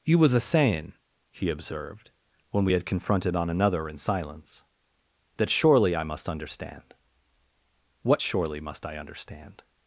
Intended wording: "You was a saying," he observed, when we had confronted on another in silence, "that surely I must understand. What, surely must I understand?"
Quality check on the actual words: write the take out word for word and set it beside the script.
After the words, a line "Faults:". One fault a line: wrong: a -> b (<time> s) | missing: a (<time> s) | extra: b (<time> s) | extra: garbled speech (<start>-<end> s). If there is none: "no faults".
"You was a saying," he observed, when we had confronted on another in silence, "that surely I must understand. What, surely must I understand?"
Faults:
no faults